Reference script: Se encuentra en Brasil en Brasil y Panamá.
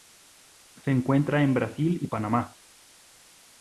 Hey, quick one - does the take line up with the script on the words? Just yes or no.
no